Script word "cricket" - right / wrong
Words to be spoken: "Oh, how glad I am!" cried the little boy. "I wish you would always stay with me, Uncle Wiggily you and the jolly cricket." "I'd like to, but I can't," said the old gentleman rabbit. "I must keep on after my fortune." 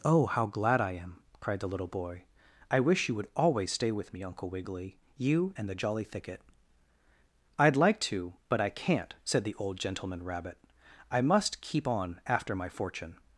wrong